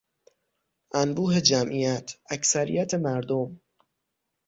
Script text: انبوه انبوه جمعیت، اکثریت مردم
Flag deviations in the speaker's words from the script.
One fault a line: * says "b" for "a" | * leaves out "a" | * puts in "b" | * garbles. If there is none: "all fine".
* leaves out "انبوه"